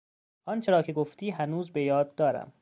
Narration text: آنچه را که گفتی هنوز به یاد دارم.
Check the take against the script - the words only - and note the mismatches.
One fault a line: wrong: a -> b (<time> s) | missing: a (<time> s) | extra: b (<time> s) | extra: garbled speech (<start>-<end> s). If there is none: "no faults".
no faults